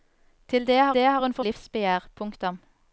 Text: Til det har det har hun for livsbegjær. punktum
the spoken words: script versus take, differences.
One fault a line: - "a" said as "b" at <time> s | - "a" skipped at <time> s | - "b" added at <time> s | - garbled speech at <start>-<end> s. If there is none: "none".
none